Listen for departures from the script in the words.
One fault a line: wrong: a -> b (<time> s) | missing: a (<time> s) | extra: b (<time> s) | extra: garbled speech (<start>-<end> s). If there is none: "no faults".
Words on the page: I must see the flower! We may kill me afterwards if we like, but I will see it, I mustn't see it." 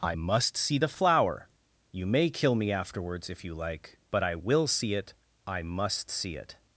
wrong: We -> You (1.9 s)
wrong: we -> you (3.4 s)
wrong: mustn't -> must (5.6 s)